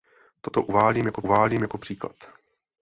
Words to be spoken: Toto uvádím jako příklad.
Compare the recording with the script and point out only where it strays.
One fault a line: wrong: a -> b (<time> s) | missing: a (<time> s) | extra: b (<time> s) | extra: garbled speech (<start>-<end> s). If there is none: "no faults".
extra: uvádím jako (1.2 s)